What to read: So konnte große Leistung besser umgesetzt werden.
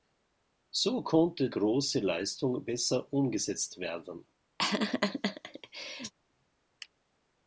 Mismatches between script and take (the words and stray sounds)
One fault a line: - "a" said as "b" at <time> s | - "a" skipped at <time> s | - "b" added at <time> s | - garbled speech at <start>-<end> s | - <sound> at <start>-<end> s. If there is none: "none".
- laugh at 4.6-6.1 s